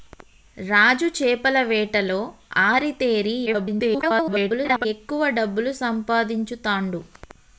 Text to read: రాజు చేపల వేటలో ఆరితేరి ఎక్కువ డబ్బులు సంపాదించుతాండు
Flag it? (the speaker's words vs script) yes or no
yes